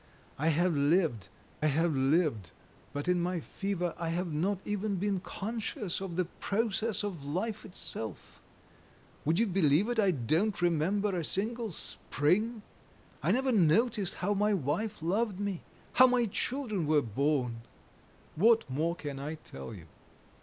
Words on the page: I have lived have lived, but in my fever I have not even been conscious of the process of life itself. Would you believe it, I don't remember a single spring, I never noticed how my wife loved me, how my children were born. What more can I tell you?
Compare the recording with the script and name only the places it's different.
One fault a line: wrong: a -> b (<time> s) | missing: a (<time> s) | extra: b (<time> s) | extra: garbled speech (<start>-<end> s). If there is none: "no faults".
no faults